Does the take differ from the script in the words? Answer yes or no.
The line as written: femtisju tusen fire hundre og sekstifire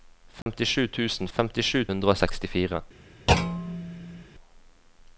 yes